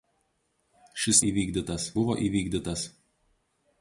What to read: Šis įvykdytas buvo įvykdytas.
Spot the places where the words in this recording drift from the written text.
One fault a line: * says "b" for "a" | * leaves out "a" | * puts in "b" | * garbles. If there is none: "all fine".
all fine